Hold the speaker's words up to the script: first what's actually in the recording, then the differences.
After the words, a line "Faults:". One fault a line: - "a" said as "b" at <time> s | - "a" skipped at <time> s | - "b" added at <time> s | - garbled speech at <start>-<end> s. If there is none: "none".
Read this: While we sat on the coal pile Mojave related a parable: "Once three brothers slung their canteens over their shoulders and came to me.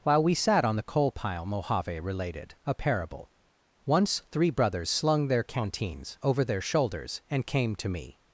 While we sat on the coal pile Mojave related a parable: "Once three brothers slung their canteens over their shoulders and came to me.
Faults:
none